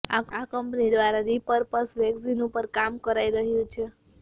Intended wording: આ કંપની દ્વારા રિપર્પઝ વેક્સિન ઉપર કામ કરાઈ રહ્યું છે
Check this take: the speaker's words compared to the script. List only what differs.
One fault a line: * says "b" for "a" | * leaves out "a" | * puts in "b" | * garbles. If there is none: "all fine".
all fine